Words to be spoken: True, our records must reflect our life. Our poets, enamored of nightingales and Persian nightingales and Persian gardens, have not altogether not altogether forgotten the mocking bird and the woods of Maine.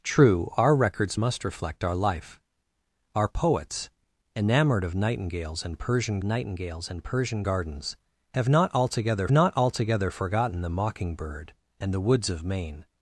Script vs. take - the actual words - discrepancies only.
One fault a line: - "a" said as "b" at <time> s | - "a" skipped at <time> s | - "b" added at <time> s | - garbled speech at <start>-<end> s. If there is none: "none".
none